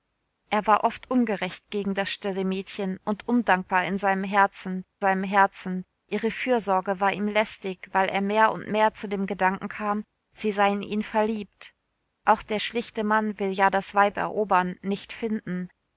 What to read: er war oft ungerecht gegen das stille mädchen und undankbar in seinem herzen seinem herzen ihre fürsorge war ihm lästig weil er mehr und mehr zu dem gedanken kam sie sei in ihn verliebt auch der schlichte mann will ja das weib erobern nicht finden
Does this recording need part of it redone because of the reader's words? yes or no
no